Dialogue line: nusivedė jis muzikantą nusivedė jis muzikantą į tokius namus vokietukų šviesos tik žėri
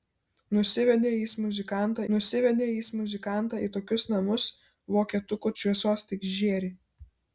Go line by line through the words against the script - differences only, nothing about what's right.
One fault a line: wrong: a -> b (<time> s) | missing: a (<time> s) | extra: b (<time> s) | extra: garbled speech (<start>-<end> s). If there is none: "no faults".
no faults